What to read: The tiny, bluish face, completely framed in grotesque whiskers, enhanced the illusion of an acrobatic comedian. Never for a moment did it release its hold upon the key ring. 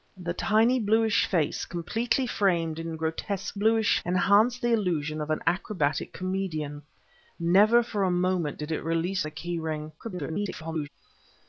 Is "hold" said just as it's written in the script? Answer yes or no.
no